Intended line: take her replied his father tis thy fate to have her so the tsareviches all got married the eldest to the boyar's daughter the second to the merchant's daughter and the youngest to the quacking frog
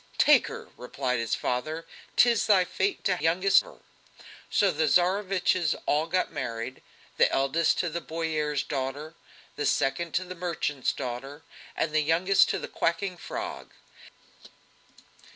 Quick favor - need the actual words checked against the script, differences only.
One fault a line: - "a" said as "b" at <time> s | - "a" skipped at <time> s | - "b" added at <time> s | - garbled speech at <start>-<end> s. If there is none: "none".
- "have" said as "youngest" at 3.2 s